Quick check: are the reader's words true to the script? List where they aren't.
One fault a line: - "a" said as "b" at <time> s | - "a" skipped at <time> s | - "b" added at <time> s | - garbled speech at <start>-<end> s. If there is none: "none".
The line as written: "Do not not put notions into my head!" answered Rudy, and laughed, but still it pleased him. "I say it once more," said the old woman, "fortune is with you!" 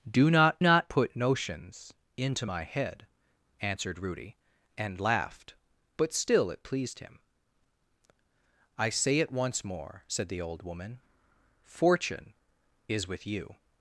none